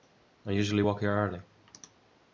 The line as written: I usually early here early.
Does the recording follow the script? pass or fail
fail